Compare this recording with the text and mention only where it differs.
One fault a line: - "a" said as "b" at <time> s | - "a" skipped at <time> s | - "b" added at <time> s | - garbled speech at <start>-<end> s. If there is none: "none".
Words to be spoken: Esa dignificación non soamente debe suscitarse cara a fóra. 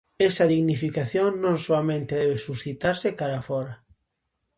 none